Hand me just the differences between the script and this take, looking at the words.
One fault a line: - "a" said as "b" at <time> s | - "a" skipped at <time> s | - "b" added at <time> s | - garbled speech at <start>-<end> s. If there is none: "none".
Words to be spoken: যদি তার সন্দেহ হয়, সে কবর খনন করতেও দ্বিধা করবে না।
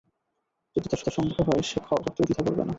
- "তার" added at 1.0 s
- "কবর খনন" skipped at 1.8 s